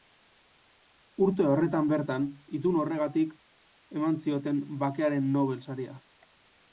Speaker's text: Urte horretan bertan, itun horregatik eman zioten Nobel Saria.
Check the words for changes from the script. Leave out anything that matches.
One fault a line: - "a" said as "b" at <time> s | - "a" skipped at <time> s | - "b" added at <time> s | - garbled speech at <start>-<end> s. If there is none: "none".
- "Bakearen" added at 4.8 s